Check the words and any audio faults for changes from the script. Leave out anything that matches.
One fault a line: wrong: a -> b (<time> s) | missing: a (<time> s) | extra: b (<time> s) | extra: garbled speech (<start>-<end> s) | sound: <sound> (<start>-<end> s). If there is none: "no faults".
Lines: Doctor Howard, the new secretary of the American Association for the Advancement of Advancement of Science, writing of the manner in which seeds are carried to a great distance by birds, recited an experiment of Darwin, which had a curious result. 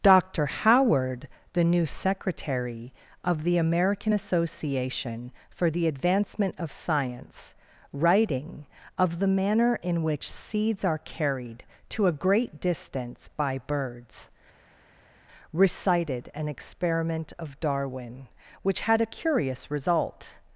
missing: Advancement of (6.7 s)